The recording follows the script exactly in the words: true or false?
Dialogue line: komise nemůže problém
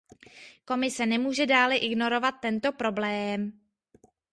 false